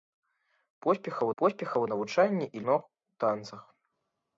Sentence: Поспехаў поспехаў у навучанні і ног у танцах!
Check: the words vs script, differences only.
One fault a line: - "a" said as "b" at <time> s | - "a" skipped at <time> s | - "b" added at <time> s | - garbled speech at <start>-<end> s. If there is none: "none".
none